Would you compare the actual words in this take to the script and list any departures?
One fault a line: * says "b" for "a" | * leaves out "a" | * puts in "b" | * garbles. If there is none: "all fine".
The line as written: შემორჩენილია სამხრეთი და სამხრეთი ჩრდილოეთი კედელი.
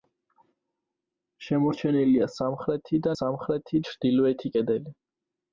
all fine